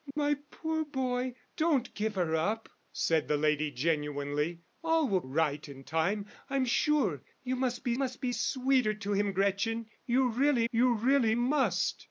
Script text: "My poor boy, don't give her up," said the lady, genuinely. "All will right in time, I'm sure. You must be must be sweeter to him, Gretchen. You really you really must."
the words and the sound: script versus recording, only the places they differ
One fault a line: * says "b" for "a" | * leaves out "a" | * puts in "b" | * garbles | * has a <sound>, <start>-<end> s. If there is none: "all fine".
* has a dropout, 0.1-0.2 s